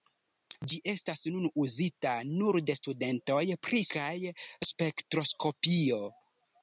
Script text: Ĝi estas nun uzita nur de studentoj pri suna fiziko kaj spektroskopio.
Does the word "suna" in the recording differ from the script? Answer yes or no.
yes